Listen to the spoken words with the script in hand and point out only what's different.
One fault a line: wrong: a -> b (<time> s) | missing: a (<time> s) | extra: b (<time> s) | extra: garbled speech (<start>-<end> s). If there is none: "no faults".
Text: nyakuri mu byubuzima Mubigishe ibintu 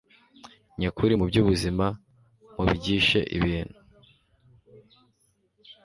no faults